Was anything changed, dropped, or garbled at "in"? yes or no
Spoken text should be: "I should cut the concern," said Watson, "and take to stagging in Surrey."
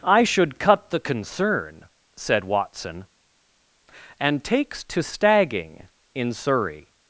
no